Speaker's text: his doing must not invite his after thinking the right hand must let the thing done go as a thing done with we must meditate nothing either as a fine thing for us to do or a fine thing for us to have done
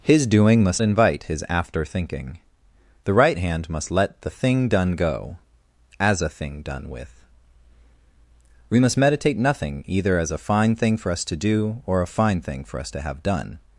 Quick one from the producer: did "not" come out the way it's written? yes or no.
no